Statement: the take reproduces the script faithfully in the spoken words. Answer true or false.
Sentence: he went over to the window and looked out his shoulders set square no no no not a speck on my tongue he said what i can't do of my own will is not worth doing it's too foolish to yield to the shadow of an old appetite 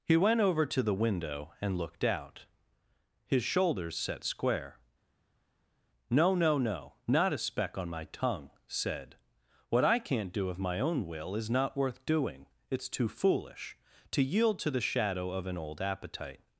false